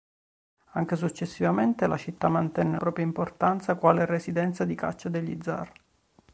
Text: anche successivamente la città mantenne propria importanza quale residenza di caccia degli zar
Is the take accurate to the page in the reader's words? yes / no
yes